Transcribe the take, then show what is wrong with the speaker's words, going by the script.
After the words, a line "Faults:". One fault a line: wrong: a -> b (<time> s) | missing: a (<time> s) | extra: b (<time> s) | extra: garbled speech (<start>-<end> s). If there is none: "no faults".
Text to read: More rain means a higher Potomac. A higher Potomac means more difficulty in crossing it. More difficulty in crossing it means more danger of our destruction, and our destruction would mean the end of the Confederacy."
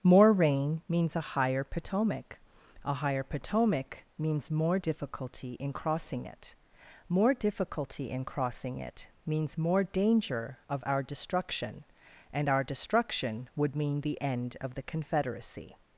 More rain means a higher Potomac. A higher Potomac means more difficulty in crossing it. More difficulty in crossing it means more danger of our destruction, and our destruction would mean the end of the Confederacy."
Faults:
no faults